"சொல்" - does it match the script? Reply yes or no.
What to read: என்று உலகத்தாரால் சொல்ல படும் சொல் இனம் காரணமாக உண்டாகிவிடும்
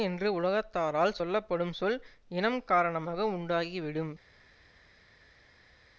yes